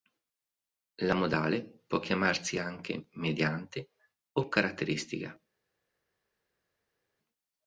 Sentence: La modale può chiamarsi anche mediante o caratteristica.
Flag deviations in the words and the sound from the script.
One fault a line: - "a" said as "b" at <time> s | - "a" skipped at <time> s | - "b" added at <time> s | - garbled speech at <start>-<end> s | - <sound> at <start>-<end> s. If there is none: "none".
none